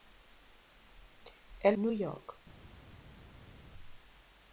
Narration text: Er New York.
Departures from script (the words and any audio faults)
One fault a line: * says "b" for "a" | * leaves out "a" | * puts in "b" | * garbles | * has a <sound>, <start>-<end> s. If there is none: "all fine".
all fine